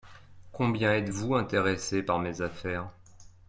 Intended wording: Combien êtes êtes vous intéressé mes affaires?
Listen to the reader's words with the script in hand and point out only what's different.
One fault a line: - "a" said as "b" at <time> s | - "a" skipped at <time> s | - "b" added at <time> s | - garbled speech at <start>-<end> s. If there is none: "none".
- "êtes" skipped at 1.1 s
- "par" added at 2.0 s